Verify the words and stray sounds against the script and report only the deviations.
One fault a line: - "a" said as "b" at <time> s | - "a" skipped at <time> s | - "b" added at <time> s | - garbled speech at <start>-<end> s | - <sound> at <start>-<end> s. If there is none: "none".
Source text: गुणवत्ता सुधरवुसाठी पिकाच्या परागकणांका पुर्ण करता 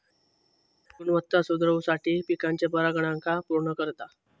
none